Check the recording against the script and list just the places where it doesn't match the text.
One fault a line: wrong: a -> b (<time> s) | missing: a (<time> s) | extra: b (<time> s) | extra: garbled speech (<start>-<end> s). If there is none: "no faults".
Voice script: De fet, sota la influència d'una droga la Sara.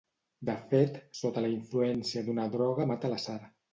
extra: mata (2.9 s)